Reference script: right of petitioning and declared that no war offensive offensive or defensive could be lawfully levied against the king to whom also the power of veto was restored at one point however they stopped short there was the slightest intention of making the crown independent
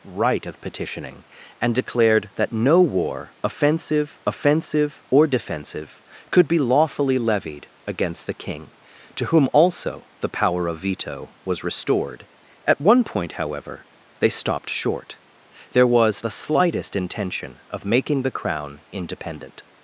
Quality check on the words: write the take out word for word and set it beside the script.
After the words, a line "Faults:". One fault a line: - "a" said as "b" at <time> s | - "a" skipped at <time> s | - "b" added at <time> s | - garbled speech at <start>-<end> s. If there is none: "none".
right of petitioning and declared that no war offensive offensive or defensive could be lawfully levied against the king to whom also the power of veto was restored at one point however they stopped short there was the slightest intention of making the crown independent
Faults:
none